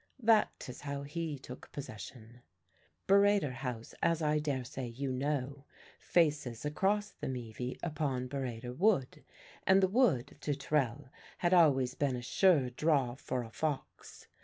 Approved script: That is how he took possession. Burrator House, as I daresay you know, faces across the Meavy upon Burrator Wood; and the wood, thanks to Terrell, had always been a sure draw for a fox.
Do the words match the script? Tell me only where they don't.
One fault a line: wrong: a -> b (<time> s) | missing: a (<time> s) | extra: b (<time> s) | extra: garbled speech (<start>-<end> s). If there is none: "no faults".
missing: thanks (10.4 s)